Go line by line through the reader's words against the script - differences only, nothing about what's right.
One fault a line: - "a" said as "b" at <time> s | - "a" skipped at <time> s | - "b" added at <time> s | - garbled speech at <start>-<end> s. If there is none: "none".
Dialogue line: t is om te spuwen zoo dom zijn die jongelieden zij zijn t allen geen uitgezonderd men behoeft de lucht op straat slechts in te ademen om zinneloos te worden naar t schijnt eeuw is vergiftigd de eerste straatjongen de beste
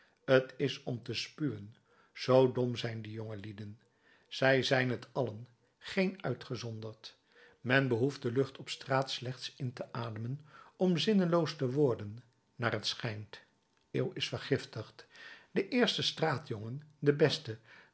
none